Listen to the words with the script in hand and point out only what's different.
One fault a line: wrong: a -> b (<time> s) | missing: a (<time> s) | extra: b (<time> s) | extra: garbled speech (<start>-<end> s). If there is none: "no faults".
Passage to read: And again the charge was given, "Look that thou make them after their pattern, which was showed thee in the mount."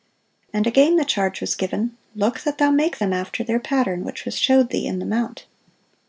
no faults